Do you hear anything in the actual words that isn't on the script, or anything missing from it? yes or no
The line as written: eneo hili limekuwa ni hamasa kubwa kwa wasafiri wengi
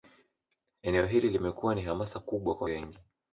yes